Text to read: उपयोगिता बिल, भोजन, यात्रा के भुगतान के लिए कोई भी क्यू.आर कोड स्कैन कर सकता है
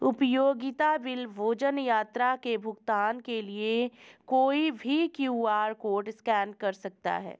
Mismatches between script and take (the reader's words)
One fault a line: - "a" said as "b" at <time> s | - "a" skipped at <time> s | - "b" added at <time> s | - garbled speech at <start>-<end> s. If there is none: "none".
none